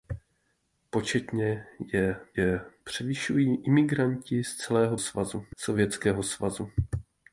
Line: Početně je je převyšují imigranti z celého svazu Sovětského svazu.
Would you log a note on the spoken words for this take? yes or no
no